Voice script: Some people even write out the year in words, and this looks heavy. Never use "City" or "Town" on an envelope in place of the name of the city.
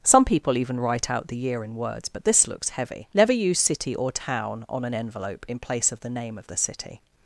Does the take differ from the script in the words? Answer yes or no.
yes